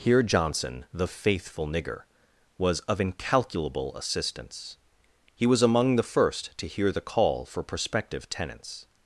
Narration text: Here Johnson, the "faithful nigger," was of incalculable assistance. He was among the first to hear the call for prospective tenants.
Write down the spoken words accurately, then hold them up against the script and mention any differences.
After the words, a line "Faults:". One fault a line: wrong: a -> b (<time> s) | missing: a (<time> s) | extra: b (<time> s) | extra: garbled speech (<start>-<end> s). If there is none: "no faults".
Here Johnson, the "faithful nigger," was of incalculable assistance. He was among the first to hear the call for prospective tenants.
Faults:
no faults